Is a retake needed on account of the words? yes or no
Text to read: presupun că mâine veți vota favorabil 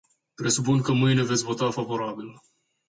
no